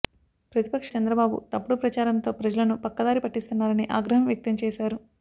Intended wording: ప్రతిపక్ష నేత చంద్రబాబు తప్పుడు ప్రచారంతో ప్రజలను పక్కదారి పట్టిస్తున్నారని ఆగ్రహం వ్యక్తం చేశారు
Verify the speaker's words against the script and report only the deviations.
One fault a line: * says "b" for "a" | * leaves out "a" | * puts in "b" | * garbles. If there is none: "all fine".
* leaves out "నేత"